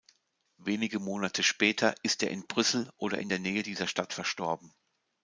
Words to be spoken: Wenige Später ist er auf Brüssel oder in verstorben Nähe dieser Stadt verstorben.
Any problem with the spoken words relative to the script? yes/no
yes